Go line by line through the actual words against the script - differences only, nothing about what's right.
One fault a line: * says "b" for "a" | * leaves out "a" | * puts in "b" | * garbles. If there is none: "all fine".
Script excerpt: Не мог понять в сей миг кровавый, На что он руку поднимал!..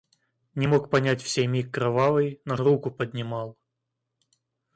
* leaves out "что он"